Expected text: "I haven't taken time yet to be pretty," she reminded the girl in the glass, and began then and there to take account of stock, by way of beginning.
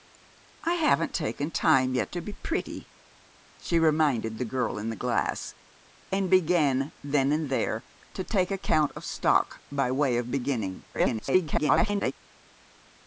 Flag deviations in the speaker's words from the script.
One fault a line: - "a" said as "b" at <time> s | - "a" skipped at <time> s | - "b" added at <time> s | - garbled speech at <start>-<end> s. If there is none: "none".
- garbled speech at 10.9-12.1 s